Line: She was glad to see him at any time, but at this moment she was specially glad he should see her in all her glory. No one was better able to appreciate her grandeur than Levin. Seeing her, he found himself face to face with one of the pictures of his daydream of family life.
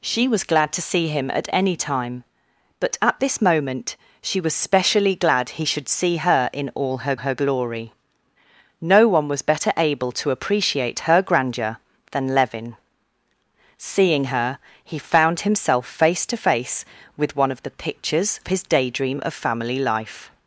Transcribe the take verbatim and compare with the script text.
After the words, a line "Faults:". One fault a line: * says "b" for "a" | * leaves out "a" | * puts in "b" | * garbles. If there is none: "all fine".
She was glad to see him at any time, but at this moment she was specially glad he should see her in all her her glory. No one was better able to appreciate her grandeur than Levin. Seeing her, he found himself face to face with one of the pictures his daydream of family life.
Faults:
* puts in "her"
* leaves out "of"